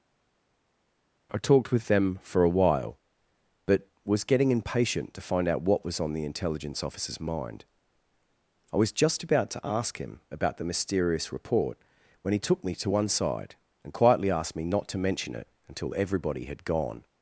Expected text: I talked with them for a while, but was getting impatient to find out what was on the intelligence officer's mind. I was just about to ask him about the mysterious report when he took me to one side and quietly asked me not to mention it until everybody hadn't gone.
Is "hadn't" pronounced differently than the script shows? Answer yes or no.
yes